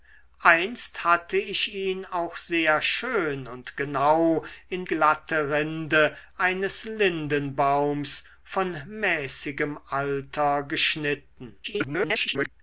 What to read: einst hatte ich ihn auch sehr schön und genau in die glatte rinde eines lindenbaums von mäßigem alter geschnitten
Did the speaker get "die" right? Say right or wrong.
wrong